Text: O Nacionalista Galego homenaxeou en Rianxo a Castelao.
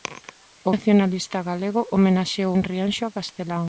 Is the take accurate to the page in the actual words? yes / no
yes